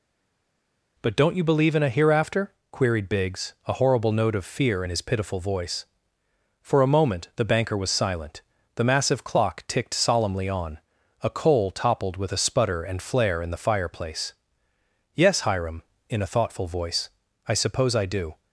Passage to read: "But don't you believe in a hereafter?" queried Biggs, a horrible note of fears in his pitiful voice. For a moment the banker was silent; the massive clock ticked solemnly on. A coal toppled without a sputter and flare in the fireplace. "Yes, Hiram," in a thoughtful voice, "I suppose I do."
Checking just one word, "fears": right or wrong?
wrong